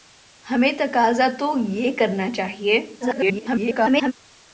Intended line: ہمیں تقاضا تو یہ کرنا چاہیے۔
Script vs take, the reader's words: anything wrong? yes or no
yes